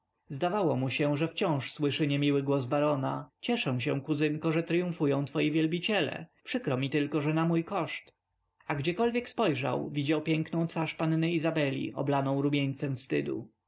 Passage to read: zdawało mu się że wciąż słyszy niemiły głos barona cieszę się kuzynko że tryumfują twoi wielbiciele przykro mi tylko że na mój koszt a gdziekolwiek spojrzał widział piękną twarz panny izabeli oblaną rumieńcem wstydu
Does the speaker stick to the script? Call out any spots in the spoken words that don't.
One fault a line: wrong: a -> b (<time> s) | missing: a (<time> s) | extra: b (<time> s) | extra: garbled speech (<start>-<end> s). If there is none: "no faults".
no faults